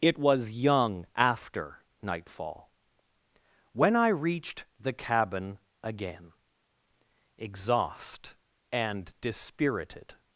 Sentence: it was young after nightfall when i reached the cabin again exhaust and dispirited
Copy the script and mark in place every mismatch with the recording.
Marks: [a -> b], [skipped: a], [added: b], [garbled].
it was young after nightfall when i reached the cabin again exhaust and dispirited